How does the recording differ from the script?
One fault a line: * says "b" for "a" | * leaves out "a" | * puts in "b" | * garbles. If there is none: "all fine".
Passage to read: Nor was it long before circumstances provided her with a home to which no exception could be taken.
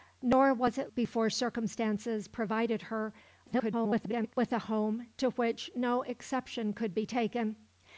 * leaves out "long"
* garbles